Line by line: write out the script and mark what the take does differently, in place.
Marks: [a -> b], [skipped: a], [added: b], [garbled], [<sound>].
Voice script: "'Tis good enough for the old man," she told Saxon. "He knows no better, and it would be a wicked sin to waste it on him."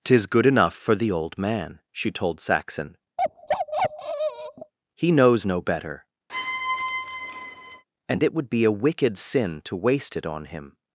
"'Tis good enough for the old man," she told Saxon. [bark] "He knows no better, [squeak] and it would be a wicked sin to waste it on him."